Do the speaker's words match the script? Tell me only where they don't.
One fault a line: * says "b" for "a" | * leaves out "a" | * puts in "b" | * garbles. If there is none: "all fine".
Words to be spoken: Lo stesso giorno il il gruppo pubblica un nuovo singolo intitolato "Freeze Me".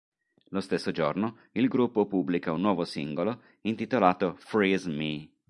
* leaves out "il"